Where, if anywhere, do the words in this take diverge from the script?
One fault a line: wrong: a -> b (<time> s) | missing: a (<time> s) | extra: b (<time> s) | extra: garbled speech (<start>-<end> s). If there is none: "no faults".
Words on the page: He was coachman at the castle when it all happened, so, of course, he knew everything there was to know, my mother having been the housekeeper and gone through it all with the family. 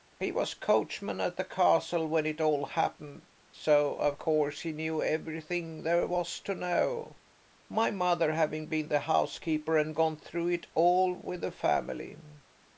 no faults